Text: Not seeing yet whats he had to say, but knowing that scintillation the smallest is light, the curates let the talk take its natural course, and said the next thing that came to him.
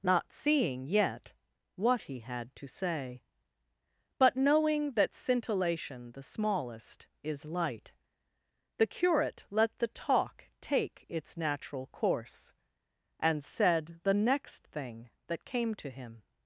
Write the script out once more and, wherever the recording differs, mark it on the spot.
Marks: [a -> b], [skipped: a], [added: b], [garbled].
Not seeing yet [whats -> what] he had to say, but knowing that scintillation the smallest is light, the [curates -> curate] let the talk take its natural course, and said the next thing that came to him.